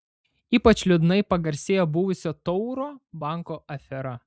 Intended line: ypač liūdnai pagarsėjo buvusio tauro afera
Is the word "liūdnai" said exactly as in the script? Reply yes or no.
yes